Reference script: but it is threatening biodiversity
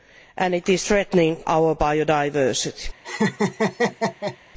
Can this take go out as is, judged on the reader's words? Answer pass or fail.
fail